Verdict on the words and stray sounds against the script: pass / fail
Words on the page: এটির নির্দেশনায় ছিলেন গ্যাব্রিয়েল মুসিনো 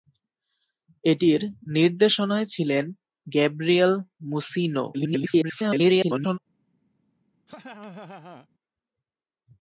fail